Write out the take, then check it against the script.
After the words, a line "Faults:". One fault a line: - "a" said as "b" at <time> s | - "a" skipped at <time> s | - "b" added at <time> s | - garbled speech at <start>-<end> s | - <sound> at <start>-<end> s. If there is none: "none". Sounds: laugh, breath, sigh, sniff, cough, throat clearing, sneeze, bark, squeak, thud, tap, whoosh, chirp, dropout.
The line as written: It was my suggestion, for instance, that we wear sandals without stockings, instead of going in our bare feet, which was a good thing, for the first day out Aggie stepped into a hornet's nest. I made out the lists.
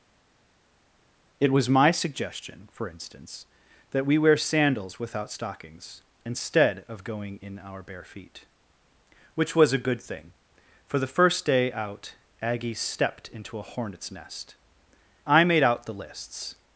It was my suggestion, for instance, that we wear sandals without stockings, instead of going in our bare feet, which was a good thing, for the first day out Aggie stepped into a hornet's nest. I made out the lists.
Faults:
none